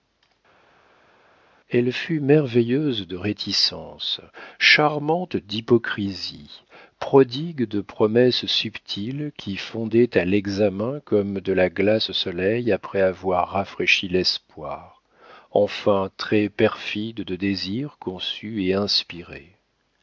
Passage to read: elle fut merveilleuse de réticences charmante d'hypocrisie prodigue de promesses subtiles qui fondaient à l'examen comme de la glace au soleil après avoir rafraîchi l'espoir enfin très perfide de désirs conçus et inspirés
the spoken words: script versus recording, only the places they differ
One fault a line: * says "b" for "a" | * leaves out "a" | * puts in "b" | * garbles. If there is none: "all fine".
all fine